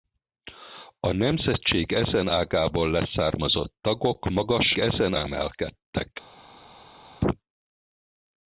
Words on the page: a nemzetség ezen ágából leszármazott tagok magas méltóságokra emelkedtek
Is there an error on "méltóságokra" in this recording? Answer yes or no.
yes